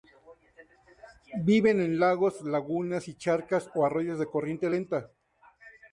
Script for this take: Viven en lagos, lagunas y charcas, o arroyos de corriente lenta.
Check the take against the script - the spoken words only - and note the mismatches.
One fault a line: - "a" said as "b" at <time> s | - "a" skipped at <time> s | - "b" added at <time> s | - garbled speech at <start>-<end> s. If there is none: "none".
none